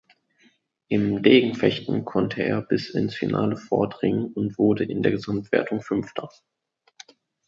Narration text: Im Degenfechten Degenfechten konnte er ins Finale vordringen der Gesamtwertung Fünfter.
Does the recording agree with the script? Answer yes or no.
no